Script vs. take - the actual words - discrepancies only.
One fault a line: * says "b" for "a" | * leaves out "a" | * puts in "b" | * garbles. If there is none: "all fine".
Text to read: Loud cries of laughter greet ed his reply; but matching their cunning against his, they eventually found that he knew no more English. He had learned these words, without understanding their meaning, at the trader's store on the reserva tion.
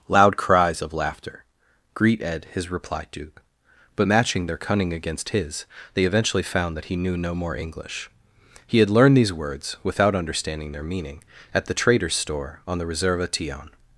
* puts in "duke"